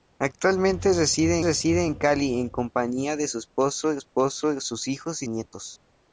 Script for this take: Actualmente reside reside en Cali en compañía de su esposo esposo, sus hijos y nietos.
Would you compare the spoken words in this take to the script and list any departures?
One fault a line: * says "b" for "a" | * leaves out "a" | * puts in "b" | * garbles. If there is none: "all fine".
all fine